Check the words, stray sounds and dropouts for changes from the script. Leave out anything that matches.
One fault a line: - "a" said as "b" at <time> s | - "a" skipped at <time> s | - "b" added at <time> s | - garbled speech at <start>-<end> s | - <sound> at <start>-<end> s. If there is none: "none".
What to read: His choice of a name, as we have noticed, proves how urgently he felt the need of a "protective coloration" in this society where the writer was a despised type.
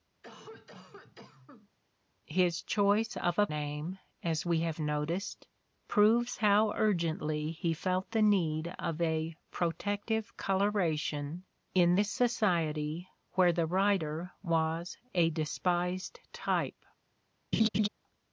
- cough at 0.2-1.7 s
- laugh at 17.5-17.9 s